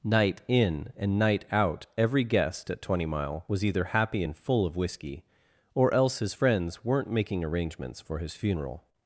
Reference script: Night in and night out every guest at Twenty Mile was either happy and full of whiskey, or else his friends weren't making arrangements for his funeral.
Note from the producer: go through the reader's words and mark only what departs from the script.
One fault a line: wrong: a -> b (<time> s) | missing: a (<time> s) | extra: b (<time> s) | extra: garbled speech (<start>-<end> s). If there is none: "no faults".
no faults